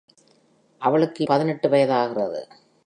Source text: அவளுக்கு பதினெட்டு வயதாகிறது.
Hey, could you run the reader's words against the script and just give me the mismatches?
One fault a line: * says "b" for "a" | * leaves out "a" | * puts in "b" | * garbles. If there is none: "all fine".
all fine